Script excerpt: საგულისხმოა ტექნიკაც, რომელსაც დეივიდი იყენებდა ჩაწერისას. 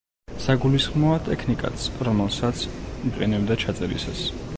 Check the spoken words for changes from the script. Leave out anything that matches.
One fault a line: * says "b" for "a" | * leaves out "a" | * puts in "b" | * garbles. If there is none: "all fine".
* leaves out "დეივიდი"